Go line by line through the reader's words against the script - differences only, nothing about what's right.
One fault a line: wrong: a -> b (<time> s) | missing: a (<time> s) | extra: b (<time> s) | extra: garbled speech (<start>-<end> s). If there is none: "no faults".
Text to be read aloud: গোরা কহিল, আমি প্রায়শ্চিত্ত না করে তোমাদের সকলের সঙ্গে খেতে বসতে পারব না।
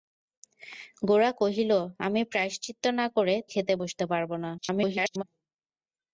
missing: তোমাদের সকলের সঙ্গে (3.4 s)
extra: garbled speech (4.6-5.2 s)